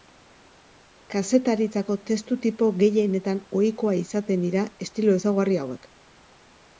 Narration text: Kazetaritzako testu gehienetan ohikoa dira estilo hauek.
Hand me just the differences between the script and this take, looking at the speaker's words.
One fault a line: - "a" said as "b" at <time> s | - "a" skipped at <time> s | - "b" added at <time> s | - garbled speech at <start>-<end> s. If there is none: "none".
- "tipo" added at 2.5 s
- "izaten" added at 4.0 s
- "ezaugarri" added at 5.2 s